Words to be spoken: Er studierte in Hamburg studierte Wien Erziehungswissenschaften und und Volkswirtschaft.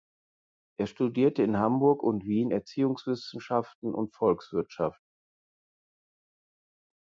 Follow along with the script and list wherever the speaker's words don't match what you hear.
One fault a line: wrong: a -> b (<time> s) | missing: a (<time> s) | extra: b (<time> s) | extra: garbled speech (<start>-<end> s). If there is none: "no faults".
wrong: studierte -> und (2.0 s)
missing: und (4.1 s)